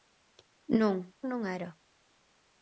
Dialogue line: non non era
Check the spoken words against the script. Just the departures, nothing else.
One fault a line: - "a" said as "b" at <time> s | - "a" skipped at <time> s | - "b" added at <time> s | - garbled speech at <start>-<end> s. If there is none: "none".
none